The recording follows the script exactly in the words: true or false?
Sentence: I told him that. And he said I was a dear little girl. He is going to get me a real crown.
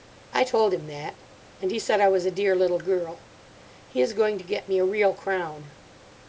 true